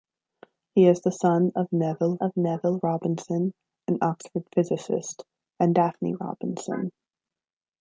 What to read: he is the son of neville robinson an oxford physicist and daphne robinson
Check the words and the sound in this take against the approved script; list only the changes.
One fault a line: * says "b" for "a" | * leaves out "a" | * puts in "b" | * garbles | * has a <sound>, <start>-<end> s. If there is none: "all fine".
* puts in "of neville"